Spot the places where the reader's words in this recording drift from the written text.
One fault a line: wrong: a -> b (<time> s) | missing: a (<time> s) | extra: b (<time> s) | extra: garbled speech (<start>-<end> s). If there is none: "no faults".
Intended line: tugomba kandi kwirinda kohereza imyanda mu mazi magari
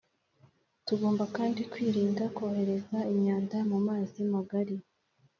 no faults